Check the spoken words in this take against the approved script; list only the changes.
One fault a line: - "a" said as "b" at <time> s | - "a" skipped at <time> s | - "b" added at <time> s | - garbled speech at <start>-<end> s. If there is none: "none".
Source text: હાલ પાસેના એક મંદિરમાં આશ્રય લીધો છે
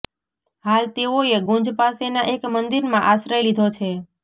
- "તેઓએ ગુંજ" added at 0.9 s